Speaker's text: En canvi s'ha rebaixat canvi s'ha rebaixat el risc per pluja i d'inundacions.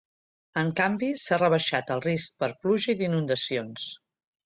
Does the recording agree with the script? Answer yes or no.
no